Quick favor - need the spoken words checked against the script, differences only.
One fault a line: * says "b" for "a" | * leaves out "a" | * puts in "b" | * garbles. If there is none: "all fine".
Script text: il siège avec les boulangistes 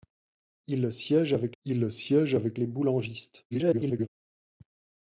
* puts in "il siège avec"
* garbles